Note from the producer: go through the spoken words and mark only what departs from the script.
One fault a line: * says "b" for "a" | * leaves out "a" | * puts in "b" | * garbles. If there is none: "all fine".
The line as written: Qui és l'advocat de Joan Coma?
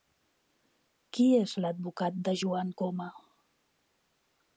all fine